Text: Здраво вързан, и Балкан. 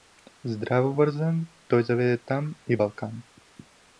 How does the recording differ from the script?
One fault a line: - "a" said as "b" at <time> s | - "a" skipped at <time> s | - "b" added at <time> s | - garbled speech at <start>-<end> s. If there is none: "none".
- "той заведе там" added at 1.7 s